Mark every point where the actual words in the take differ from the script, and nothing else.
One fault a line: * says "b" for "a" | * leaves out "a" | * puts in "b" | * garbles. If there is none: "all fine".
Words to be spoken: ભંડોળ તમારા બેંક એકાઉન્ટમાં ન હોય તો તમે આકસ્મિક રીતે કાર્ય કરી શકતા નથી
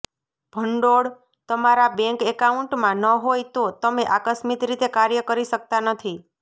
all fine